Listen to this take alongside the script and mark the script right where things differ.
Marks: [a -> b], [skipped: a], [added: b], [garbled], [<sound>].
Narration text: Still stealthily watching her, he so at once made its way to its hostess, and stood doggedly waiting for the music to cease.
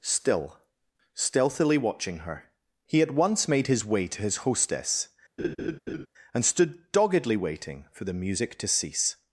Still stealthily watching her, he [skipped: so] at once made [its -> his] way to [its -> his] hostess, [laugh] and stood doggedly waiting for the music to cease.